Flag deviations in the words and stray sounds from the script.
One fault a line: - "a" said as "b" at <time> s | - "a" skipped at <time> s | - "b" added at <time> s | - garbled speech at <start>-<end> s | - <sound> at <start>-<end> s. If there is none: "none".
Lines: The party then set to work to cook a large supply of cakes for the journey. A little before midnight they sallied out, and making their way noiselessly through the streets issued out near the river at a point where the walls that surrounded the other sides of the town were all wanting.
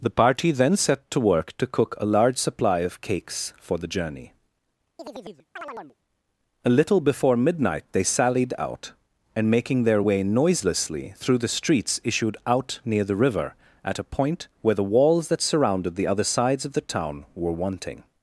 - chirp at 5.0-6.0 s
- "all" skipped at 17.5 s